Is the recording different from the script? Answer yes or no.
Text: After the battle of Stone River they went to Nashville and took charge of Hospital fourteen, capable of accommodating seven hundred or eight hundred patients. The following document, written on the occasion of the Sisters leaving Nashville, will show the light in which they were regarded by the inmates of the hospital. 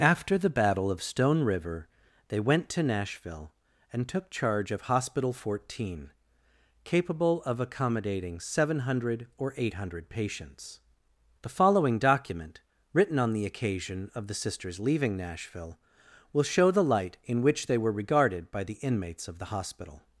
no